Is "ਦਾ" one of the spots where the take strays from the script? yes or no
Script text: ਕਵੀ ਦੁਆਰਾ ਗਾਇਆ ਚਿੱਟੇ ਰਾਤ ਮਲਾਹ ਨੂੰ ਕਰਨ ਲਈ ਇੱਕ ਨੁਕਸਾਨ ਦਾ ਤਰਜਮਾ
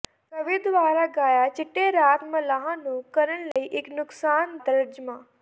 yes